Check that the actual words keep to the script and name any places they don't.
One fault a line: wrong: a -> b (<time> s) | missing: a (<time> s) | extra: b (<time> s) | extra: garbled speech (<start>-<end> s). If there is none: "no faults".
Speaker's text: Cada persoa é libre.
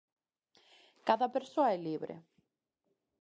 no faults